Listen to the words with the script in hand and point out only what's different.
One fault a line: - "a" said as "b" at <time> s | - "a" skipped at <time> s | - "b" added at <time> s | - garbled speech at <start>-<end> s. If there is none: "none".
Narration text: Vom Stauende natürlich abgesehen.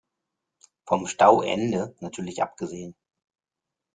none